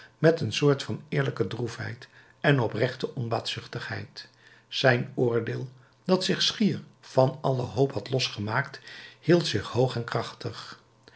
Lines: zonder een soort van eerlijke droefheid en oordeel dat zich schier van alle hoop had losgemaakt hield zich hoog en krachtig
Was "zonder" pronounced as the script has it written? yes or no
no